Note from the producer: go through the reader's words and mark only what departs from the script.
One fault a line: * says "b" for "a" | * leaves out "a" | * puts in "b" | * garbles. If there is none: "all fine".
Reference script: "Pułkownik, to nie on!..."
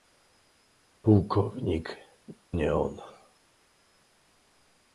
* leaves out "to"